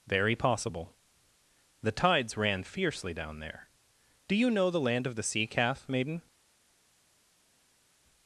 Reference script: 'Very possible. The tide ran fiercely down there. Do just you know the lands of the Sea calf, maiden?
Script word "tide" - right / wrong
wrong